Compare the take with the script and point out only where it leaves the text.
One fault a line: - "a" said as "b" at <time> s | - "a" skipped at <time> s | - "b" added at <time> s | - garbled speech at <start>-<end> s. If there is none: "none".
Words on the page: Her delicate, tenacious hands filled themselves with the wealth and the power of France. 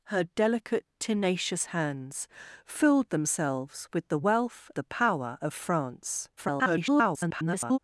- "and" skipped at 4.7 s
- garbled speech at 6.4-7.8 s